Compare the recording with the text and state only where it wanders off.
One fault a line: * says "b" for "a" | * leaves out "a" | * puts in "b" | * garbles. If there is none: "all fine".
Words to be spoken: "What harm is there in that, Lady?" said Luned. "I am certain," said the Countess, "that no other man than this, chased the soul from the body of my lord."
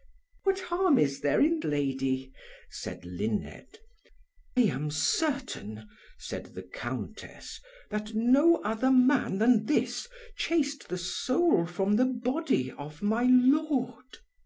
* leaves out "that"
* leaves out "I"